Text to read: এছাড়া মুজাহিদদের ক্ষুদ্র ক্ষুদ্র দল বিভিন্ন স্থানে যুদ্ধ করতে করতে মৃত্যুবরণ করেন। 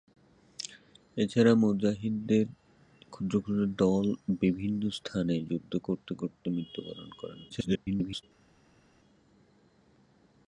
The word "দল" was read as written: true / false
true